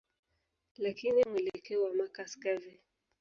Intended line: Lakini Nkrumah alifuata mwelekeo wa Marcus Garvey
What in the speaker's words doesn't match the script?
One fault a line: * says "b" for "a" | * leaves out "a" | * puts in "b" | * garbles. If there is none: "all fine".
* leaves out "Nkrumah alifuata"